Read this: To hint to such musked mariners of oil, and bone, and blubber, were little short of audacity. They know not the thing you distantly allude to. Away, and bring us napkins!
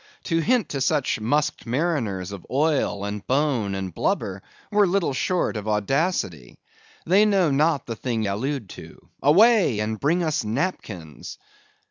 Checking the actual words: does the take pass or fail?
fail